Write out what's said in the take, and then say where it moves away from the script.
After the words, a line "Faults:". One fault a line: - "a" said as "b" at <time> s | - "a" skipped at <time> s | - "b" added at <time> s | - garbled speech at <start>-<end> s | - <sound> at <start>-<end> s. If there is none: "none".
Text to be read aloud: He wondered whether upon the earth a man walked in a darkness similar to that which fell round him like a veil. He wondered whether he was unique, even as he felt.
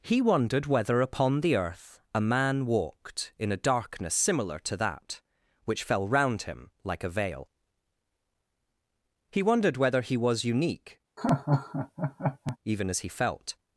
He wondered whether upon the earth a man walked in a darkness similar to that which fell round him like a veil. He wondered whether he was unique, even as he felt.
Faults:
- laugh at 11.2-12.6 s